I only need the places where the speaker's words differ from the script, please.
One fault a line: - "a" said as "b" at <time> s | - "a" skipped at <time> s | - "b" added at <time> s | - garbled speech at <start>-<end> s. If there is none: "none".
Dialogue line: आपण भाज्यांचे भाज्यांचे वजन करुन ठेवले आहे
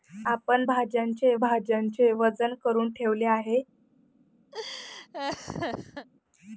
none